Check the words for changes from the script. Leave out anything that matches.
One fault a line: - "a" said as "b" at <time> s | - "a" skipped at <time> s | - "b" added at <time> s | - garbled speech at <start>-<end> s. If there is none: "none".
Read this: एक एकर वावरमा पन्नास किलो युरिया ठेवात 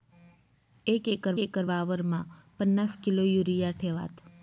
- "एकर" added at 1.4 s